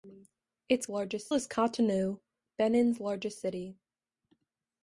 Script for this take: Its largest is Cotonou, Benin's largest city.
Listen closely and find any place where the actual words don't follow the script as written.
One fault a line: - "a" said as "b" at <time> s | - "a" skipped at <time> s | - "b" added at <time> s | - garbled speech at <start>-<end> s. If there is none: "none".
none